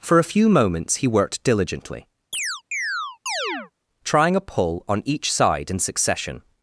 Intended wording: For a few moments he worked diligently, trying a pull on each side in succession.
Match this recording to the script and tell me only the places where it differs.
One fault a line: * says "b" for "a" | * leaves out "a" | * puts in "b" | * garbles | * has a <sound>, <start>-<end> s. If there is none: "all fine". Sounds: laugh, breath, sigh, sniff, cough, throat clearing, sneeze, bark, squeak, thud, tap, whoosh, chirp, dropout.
* has a chirp, 2.3-3.7 s